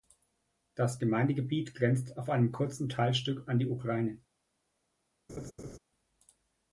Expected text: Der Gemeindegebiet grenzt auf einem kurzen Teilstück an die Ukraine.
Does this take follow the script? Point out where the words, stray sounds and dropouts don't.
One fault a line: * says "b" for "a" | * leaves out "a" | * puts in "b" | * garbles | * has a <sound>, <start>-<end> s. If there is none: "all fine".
* says "Das" for "Der"
* has a laugh, 5.3-5.8 s